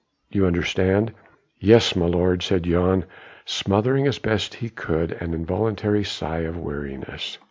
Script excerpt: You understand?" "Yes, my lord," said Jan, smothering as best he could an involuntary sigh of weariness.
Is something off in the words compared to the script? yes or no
no